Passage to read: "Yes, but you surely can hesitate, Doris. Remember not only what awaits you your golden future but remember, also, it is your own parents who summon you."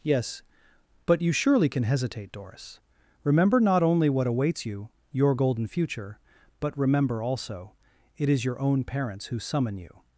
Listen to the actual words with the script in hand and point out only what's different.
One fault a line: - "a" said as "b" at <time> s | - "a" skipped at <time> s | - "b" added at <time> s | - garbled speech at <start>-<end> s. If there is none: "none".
none